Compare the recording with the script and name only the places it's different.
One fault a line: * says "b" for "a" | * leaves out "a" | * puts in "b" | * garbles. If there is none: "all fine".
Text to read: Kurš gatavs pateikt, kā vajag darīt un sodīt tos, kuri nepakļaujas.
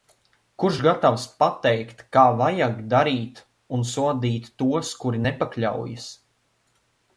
all fine